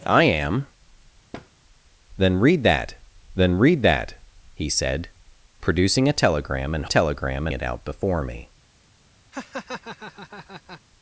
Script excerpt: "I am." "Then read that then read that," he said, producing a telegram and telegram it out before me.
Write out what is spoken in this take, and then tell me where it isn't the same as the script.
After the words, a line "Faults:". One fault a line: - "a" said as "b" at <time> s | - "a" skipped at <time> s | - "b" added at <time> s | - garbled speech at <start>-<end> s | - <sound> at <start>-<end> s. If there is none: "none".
"I am." "Then read that then read that," he said, producing a telegram and telegram it out before me.
Faults:
- thud at 1.3-1.5 s
- laugh at 9.3-10.8 s